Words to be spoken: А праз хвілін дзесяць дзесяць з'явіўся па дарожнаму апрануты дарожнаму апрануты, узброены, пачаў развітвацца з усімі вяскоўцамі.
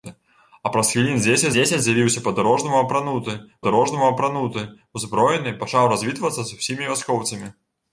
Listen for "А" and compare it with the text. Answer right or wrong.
right